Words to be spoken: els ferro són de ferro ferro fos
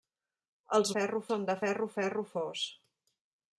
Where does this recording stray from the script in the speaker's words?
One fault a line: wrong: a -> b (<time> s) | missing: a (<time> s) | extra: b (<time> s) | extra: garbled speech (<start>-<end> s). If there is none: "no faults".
no faults